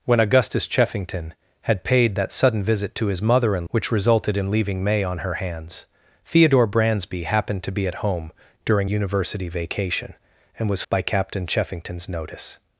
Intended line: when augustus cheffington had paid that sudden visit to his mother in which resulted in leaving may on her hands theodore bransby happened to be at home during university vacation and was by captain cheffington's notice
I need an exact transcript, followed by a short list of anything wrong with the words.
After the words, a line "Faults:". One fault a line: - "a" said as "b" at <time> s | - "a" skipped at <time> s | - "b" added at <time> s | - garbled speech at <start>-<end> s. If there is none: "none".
when augustus cheffington had paid that sudden visit to his mother in which resulted in leaving may on her hands theodore bransby happened to be at home during university vacation and was by captain cheffington's notice
Faults:
none